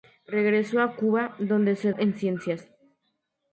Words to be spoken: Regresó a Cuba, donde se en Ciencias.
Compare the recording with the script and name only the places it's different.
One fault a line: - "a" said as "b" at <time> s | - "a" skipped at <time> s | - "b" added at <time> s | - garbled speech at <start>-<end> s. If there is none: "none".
none